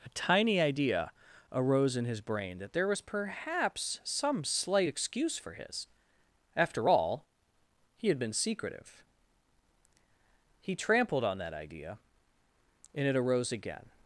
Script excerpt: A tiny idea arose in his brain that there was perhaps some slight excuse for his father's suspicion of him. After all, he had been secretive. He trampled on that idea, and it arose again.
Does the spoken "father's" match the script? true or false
false